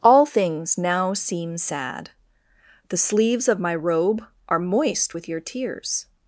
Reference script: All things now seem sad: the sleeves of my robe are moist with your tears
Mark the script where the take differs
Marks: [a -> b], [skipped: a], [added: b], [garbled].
All things now seem sad: the sleeves of my robe are moist with your tears